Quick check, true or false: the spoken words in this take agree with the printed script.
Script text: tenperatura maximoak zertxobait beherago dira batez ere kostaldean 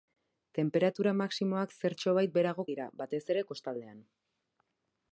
true